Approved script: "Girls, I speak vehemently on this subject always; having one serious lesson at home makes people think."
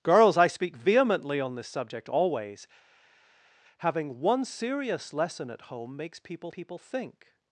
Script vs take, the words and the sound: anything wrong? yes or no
yes